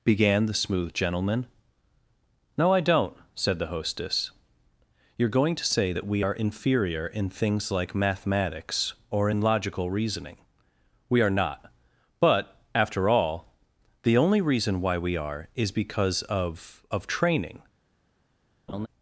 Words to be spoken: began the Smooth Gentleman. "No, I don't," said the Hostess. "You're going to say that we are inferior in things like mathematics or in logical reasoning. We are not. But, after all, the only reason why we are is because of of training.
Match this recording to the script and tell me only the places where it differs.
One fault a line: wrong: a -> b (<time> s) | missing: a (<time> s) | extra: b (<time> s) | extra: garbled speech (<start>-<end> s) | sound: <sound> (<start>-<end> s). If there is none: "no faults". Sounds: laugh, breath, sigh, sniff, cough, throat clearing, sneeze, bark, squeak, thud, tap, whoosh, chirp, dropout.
sound: laugh (18.7-18.9 s)